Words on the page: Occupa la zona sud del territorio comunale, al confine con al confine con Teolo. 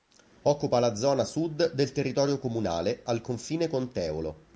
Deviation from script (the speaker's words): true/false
true